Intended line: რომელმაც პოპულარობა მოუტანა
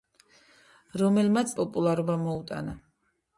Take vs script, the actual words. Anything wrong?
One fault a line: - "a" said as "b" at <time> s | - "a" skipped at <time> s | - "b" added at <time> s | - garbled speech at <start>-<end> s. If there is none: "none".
none